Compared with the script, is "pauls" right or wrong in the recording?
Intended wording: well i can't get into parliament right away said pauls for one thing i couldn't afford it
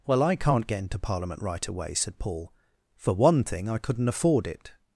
wrong